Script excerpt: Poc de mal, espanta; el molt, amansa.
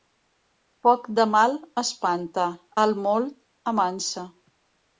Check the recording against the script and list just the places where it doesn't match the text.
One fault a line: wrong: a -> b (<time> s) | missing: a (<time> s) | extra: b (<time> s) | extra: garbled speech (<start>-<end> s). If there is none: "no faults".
no faults